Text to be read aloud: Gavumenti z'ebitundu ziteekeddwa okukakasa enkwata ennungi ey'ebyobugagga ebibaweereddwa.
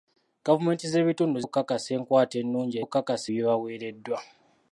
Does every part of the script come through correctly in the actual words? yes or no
no